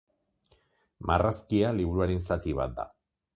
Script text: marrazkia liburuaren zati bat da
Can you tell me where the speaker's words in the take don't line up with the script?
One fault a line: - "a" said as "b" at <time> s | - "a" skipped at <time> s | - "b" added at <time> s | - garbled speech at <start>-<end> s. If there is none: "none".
none